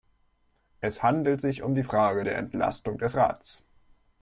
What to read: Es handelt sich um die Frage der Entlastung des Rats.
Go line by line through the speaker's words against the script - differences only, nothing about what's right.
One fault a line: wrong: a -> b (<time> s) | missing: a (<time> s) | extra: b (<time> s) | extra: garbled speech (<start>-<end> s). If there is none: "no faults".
no faults